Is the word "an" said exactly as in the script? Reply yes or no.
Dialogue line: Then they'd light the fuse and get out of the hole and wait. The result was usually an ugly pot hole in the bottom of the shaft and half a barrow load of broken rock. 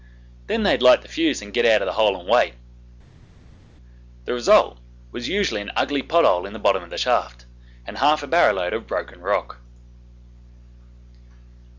yes